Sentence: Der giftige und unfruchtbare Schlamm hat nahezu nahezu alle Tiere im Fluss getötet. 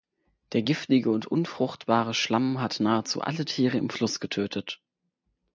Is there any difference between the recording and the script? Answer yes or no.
yes